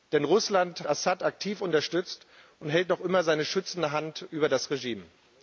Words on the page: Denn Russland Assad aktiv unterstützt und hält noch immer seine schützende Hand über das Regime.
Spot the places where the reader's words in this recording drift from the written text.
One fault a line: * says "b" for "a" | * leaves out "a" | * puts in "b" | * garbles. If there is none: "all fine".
all fine